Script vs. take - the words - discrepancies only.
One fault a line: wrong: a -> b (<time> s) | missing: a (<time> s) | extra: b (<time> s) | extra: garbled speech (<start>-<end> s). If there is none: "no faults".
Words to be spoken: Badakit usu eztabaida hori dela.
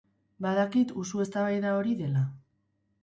no faults